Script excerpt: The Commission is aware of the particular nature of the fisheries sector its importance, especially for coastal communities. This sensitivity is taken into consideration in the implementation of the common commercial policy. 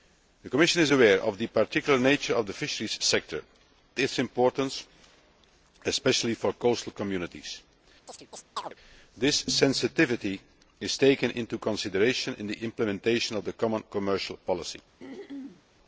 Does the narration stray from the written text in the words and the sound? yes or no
yes